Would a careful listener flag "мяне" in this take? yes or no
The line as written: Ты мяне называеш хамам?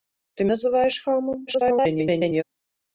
yes